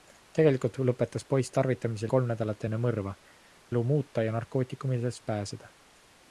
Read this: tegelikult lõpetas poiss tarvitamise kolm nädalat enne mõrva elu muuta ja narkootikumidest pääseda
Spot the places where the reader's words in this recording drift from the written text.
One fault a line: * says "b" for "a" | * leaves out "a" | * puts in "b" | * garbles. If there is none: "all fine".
all fine